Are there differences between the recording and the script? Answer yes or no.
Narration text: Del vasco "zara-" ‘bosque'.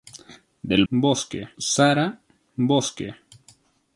yes